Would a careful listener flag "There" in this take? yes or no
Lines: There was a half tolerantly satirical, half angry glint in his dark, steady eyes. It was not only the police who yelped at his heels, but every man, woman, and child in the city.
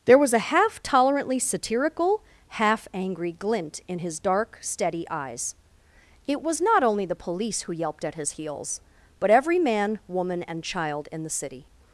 no